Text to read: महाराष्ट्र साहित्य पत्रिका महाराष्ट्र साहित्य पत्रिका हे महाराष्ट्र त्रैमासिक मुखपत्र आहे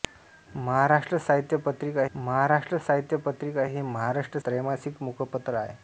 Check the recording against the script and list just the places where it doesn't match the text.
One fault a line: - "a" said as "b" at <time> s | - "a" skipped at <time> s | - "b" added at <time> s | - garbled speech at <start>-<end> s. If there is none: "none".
none